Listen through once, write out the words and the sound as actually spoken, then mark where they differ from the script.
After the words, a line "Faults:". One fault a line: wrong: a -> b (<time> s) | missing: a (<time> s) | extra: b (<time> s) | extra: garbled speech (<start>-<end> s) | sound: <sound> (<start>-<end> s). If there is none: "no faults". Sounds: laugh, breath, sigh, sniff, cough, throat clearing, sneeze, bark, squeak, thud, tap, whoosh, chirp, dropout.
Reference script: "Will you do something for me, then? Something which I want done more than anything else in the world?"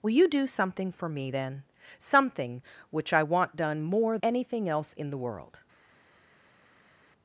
"Will you do something for me, then? Something which I want done more anything else in the world?"
Faults:
missing: than (4.2 s)